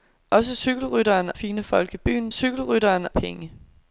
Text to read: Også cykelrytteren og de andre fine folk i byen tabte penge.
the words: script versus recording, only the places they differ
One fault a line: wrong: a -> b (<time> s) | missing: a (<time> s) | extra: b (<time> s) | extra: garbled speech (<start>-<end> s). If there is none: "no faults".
missing: og de andre (1.3 s)
wrong: tabte -> cykelrytteren (2.3 s)